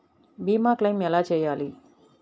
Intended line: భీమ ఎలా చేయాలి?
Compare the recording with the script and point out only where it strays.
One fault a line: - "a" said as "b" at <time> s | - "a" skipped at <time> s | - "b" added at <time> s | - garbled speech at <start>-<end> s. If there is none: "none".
- "క్లెయిం" added at 0.7 s